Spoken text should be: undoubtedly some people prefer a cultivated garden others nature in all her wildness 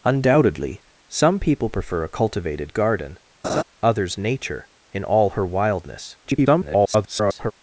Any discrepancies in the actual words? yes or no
yes